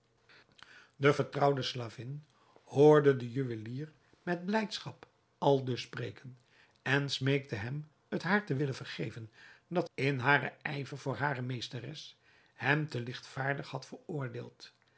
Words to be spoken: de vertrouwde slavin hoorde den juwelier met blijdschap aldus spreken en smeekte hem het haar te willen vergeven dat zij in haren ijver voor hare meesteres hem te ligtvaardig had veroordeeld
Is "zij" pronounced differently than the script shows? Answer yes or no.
yes